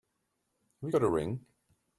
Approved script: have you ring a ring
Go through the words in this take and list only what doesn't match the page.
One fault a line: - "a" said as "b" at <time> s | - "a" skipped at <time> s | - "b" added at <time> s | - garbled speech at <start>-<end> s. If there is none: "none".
- "ring" said as "got" at 0.9 s